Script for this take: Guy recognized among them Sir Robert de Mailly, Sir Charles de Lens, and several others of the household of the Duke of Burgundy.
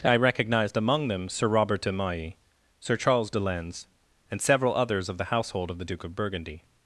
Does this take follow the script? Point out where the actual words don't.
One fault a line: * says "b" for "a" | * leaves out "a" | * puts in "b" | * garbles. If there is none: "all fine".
* says "I" for "Guy"